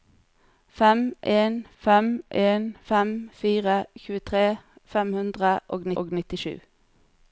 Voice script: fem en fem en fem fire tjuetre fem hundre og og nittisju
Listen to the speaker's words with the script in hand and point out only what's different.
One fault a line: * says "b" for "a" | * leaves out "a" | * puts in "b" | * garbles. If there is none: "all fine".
all fine